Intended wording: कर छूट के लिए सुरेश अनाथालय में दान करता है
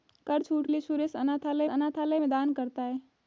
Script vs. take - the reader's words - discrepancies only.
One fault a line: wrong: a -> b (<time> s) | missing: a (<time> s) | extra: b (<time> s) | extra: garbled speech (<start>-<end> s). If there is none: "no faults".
missing: के (0.7 s)
extra: अनाथालय (1.7 s)